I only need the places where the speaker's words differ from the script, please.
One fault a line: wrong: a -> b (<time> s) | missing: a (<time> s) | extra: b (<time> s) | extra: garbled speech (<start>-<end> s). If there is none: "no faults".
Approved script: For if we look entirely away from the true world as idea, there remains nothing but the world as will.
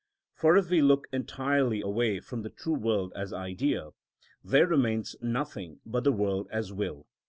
no faults